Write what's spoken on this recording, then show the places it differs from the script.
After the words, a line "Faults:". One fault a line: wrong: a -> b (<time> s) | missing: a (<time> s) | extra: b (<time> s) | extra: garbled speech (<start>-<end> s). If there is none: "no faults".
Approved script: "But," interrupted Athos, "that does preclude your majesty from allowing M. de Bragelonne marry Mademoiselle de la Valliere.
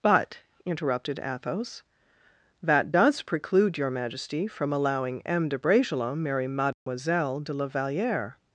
"But," interrupted Athos, "that does preclude your majesty from allowing M. de Bragelonne marry Mademoiselle de la Valliere.
Faults:
no faults